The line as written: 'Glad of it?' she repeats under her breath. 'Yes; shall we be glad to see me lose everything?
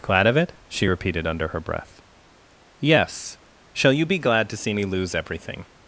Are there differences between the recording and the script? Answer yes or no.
yes